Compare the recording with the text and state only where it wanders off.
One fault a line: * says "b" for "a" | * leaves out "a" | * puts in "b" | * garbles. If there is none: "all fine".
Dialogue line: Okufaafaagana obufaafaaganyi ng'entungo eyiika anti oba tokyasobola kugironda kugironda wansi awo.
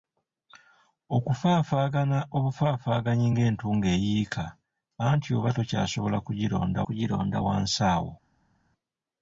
all fine